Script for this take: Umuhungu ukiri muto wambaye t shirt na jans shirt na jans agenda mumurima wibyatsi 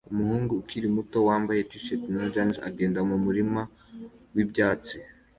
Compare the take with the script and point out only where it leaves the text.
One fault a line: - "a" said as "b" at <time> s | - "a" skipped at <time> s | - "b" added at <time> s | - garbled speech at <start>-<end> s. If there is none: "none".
- "shirt na jans" skipped at 2.5 s